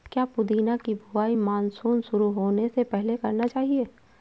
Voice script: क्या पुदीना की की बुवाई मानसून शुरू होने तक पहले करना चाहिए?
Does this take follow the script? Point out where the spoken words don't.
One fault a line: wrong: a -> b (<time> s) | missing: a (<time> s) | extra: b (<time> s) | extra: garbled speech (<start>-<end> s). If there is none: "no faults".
missing: की (0.9 s)
wrong: तक -> से (2.7 s)